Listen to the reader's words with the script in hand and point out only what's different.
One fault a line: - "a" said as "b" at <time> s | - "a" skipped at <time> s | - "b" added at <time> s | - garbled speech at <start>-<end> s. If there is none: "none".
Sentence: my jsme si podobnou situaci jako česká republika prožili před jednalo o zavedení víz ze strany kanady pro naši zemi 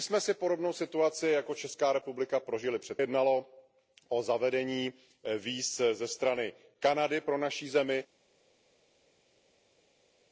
none